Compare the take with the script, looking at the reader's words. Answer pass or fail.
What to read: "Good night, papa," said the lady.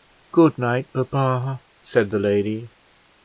pass